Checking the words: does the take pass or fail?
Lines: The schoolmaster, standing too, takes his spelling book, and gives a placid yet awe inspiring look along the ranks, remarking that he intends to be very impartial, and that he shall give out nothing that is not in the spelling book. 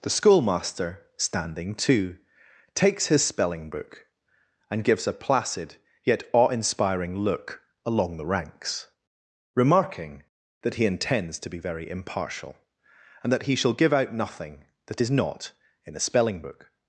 fail